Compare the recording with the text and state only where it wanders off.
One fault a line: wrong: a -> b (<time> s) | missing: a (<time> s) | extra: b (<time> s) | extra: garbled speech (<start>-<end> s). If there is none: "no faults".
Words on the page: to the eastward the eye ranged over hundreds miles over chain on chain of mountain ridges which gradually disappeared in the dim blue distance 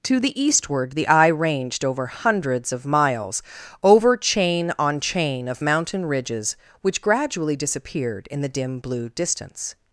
extra: of (2.7 s)